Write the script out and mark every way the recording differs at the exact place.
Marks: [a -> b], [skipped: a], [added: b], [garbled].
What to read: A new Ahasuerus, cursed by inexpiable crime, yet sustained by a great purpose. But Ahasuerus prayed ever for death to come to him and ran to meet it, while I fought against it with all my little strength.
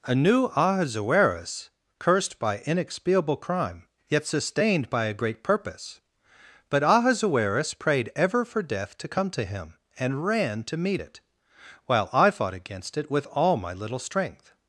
A new Ahasuerus, cursed by inexpiable crime, yet sustained by a great purpose. But Ahasuerus prayed ever for death to come to him and ran to meet it, while I fought against it with all my little strength.